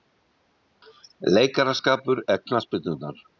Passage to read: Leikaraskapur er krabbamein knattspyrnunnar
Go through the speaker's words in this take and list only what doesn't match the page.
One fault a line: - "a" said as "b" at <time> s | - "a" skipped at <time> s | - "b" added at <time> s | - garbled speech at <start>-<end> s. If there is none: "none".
- "krabbamein" skipped at 2.4 s